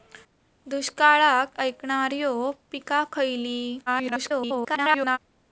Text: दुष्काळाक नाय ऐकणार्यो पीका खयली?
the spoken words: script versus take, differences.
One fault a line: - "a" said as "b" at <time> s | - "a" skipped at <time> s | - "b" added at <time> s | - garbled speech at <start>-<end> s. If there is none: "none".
- "नाय" skipped at 1.6 s
- garbled speech at 3.9-5.2 s